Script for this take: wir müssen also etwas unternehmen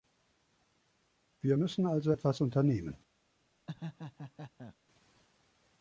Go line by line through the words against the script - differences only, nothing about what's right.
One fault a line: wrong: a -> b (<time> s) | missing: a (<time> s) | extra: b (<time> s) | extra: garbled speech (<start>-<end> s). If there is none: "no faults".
no faults